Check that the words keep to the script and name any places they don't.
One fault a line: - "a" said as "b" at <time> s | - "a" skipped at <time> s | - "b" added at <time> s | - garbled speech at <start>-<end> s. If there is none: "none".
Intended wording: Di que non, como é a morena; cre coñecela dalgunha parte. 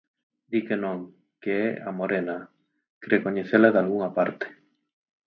- "como" said as "que" at 1.4 s